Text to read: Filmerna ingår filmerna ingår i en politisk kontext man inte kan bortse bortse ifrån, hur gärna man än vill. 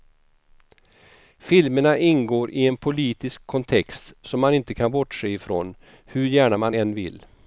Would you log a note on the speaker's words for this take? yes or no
yes